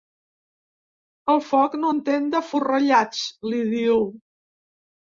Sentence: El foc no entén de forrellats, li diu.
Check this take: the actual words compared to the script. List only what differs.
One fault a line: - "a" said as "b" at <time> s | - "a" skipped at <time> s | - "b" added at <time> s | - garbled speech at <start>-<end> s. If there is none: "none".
none